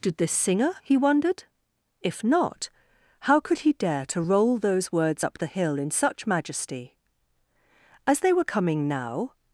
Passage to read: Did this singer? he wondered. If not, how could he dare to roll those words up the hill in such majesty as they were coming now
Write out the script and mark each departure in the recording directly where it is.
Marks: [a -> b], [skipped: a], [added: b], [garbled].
Did this singer? he wondered. If not, how could he dare to roll those words up the hill in such majesty as they were coming now